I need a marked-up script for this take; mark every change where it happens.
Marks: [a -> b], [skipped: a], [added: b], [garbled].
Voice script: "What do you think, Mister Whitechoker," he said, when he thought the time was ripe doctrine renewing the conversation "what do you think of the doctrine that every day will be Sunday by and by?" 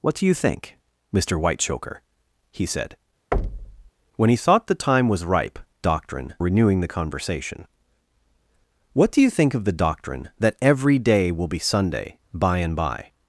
"What do you think, Mister Whitechoker," he said, when he thought the time was ripe doctrine renewing the conversation "what do you think of the doctrine that every day will be Sunday by and by?"